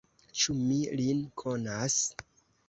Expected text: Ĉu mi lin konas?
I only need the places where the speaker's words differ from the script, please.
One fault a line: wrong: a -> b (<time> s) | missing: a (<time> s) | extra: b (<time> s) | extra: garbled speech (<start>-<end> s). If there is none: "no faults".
no faults